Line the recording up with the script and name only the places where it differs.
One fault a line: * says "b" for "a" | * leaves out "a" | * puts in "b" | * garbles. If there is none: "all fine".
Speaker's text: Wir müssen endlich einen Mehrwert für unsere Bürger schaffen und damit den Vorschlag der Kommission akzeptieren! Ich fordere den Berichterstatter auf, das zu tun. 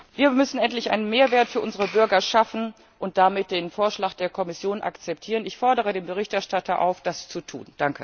all fine